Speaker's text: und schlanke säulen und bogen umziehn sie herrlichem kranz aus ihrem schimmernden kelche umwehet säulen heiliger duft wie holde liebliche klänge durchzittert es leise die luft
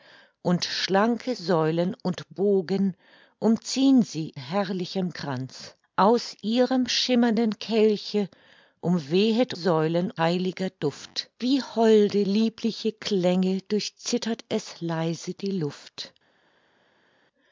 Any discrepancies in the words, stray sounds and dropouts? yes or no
no